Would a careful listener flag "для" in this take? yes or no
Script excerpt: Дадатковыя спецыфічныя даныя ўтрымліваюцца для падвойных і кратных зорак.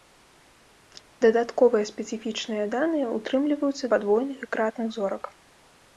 yes